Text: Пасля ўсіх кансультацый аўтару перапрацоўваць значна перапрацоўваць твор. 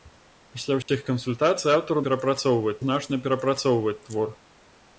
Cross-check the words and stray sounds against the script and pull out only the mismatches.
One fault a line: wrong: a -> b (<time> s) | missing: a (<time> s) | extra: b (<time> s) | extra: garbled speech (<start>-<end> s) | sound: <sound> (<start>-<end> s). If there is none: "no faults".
sound: dropout (0.8-0.9 s)